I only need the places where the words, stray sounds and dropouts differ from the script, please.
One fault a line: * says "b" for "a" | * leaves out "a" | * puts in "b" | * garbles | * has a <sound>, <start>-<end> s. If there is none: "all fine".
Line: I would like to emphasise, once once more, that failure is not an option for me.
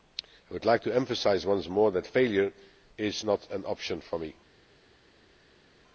* leaves out "once"